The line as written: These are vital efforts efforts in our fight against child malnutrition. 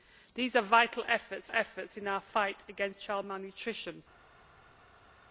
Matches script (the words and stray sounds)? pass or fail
pass